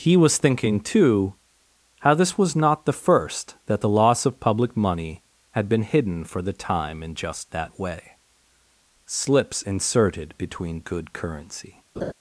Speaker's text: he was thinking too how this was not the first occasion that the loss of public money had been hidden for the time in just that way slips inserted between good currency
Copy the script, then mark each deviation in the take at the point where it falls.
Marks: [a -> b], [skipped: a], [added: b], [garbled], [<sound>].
he was thinking too how this was not the first [skipped: occasion] that the loss of public money had been hidden for the time in just that way slips inserted between good currency [laugh]